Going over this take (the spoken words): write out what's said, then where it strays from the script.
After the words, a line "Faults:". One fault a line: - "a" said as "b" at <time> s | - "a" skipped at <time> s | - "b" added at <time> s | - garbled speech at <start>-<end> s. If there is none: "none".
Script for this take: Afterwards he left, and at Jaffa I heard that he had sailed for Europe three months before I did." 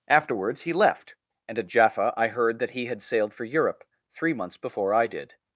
Afterwards he left, and at Jaffa I heard that he had sailed for Europe three months before I did."
Faults:
none